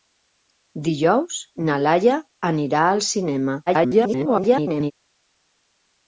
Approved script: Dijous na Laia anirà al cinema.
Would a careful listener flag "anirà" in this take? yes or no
no